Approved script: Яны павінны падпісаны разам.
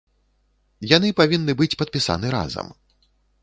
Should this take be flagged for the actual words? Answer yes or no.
yes